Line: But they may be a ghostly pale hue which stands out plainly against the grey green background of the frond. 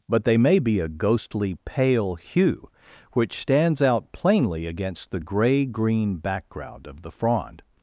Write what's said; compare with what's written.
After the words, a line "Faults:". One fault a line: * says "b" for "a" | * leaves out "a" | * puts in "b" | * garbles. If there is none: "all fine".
But they may be a ghostly pale hue which stands out plainly against the grey green background of the frond.
Faults:
all fine